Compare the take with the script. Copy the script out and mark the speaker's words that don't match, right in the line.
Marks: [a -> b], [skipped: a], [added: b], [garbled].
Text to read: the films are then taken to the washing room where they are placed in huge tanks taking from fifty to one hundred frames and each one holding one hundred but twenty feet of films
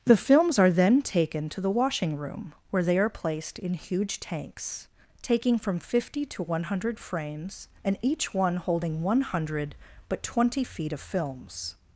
the films are then taken to the washing room where they are placed in huge tanks taking from fifty to one hundred frames and each one holding one hundred but twenty feet of films